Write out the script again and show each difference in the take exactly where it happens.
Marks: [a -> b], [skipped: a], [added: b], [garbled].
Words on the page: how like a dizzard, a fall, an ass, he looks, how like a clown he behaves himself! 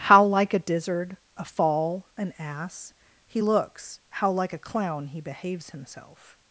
how like a dizzard, a fall, an ass, he looks, how like a clown he behaves himself!